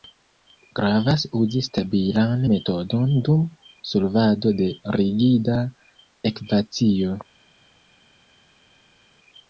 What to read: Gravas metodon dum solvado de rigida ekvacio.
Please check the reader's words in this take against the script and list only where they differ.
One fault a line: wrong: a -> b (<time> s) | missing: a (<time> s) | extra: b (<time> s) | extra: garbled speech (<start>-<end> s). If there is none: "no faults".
extra: uzi stabilan (1.4 s)